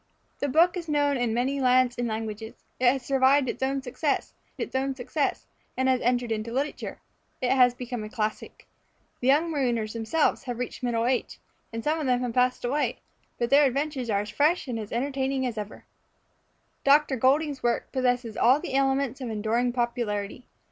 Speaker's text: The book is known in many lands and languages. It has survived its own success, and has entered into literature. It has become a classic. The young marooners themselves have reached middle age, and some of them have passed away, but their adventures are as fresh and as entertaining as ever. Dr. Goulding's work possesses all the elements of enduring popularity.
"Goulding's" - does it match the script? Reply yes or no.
yes